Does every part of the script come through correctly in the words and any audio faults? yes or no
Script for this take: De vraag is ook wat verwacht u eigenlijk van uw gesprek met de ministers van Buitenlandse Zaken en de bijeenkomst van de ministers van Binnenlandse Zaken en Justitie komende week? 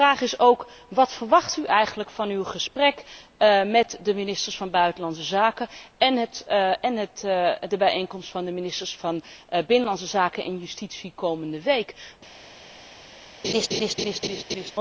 no